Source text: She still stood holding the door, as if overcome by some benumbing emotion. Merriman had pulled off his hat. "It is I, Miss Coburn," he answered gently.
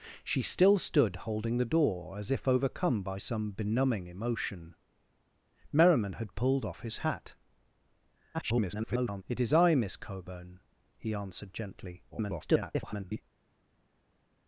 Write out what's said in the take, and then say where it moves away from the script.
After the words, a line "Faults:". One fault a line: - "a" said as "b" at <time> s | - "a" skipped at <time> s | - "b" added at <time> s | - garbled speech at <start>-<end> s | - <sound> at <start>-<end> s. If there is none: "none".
She still stood holding the door, as if overcome by some benumbing emotion. Merriman had pulled off his hat. [garbled] "It is I, Miss Coburn," he answered gently. [garbled]
Faults:
- garbled speech at 8.3-9.2 s
- garbled speech at 12.1-13.2 s